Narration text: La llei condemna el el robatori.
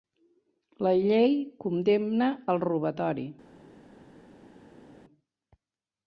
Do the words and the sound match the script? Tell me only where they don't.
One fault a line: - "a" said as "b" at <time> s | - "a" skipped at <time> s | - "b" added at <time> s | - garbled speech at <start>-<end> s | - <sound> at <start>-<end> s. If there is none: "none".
- "el" skipped at 2.7 s